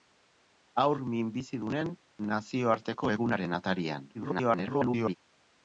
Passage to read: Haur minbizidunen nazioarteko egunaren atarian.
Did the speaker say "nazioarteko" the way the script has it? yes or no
yes